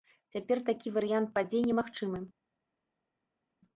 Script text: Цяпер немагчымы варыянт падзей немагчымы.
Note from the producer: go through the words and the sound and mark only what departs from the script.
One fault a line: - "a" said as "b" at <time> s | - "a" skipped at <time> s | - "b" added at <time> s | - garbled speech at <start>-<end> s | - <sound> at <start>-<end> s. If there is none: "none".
- "немагчымы" said as "такі" at 0.7 s